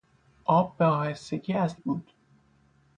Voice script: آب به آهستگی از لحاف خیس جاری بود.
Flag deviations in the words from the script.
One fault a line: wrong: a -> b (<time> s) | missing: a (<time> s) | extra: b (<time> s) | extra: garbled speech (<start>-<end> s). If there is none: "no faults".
missing: لحاف خیس جاری (1.8 s)